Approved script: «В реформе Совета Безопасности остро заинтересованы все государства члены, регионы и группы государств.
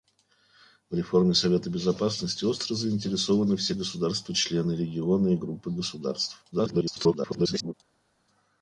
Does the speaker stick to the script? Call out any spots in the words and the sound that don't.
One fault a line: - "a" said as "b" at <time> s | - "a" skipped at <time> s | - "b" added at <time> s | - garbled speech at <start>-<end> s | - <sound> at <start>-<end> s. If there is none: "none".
- garbled speech at 6.5-7.7 s